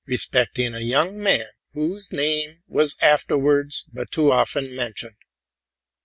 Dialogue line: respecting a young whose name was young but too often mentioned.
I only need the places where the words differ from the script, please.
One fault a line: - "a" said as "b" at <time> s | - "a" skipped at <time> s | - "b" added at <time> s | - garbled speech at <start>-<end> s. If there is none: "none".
- "man" added at 1.2 s
- "young" said as "afterwards" at 3.0 s